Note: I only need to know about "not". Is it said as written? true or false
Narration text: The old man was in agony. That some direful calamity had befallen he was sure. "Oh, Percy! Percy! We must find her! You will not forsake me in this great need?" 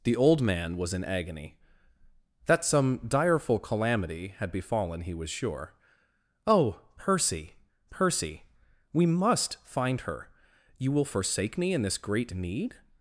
false